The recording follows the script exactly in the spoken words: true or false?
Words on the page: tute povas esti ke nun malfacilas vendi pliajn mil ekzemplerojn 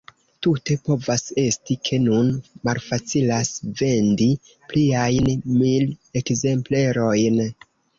true